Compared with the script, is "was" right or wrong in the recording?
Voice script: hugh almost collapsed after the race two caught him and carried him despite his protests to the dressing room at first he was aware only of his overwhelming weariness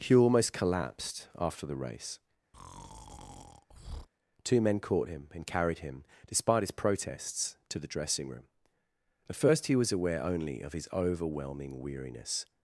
right